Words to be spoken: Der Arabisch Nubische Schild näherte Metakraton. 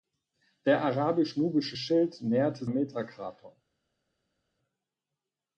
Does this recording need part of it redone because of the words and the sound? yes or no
no